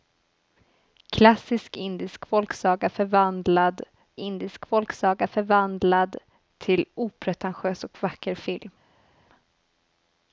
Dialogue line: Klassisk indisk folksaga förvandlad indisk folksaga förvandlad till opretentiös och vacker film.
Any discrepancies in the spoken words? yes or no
no